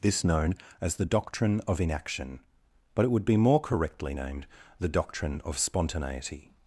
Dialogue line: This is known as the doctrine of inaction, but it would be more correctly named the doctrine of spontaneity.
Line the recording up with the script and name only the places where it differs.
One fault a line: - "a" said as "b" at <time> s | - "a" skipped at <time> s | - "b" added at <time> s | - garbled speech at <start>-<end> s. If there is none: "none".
- "is" skipped at 0.2 s